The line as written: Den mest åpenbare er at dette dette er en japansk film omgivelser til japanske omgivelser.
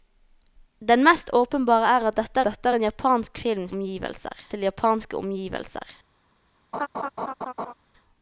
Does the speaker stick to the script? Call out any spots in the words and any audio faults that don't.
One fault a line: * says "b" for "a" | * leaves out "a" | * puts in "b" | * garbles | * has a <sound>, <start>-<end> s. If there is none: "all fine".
* has a laugh, 6.7-7.7 s